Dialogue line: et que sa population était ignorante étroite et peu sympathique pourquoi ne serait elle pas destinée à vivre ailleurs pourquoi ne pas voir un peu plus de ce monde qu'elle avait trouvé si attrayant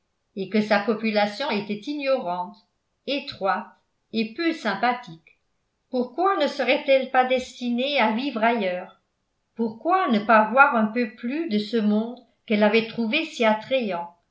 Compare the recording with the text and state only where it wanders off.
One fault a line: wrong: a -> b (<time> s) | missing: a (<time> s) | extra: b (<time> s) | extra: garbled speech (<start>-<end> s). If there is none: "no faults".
no faults